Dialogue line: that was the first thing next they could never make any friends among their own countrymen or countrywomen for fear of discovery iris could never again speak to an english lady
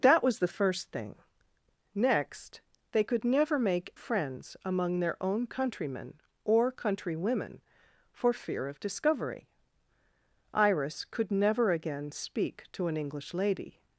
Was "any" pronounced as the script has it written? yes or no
no